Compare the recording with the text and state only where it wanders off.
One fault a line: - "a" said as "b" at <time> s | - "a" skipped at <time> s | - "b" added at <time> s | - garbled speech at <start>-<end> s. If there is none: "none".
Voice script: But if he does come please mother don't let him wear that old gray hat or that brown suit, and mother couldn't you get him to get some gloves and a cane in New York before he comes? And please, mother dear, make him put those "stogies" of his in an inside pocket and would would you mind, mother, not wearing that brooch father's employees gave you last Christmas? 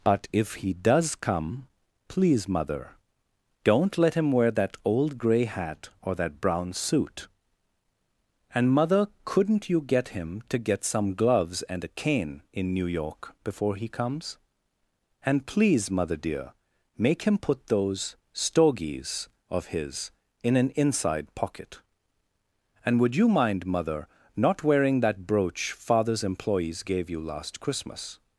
- "would" skipped at 23.1 s